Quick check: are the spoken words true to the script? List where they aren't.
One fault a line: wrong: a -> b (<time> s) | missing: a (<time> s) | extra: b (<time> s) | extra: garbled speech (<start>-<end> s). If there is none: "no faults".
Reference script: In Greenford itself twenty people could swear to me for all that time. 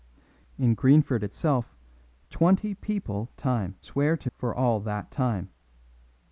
wrong: could -> time (3.4 s)
missing: me (4.3 s)